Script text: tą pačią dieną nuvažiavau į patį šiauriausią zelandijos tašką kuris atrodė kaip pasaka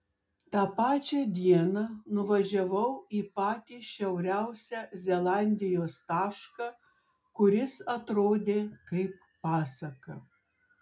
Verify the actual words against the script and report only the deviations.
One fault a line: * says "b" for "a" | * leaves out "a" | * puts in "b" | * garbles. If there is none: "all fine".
all fine